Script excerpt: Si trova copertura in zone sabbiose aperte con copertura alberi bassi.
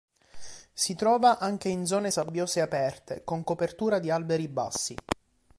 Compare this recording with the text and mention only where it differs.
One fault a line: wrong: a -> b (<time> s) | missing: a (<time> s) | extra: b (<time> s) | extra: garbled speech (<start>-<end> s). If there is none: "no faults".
wrong: copertura -> anche (1.4 s)
extra: di (4.0 s)